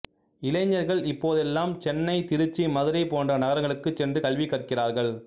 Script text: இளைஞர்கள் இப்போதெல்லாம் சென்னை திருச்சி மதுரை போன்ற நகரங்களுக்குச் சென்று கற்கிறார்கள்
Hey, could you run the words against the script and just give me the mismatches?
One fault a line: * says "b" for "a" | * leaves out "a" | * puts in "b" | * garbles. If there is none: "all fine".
* puts in "கல்வி"